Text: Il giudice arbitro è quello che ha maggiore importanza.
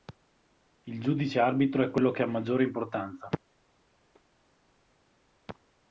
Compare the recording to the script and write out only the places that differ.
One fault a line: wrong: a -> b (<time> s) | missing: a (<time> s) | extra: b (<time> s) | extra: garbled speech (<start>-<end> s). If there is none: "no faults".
no faults